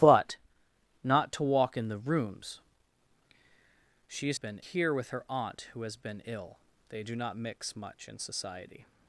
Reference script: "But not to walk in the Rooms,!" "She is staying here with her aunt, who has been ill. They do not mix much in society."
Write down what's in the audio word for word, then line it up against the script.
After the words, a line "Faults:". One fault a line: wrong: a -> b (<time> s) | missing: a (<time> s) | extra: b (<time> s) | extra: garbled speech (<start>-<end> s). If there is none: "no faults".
"But not to walk in the Rooms,!" "She is been here with her aunt, who has been ill. They do not mix much in society."
Faults:
wrong: staying -> been (4.3 s)